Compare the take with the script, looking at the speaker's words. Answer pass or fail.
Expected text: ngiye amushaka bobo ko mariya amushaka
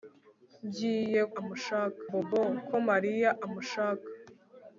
pass